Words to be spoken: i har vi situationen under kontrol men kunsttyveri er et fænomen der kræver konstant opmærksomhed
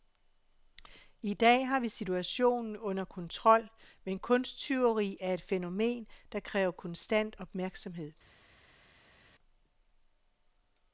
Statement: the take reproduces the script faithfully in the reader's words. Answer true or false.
false